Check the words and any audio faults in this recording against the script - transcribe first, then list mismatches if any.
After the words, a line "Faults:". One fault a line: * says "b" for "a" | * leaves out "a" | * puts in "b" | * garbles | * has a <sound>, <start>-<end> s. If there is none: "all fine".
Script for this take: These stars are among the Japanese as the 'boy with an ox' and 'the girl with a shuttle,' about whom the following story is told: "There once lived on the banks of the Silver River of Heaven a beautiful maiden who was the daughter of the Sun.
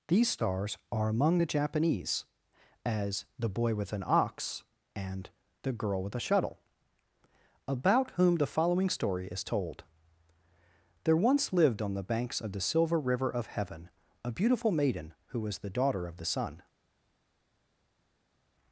These stars are among the Japanese as the 'boy with an ox' and 'the girl with a shuttle,' about whom the following story is told: "There once lived on the banks of the Silver River of Heaven a beautiful maiden who was the daughter of the Sun.
Faults:
all fine